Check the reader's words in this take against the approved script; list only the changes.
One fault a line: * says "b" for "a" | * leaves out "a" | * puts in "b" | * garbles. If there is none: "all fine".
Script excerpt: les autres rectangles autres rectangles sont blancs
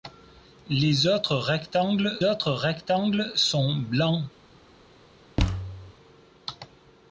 all fine